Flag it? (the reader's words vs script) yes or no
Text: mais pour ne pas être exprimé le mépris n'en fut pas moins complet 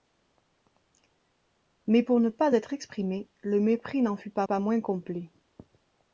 yes